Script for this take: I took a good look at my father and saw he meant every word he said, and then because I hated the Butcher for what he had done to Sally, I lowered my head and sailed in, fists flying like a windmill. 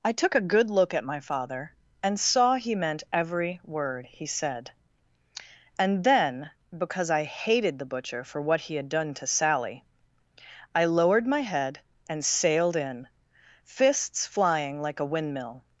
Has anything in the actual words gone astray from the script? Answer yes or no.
no